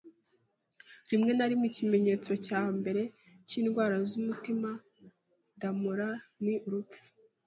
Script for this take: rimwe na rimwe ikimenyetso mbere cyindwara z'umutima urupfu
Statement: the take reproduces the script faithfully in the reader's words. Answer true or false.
false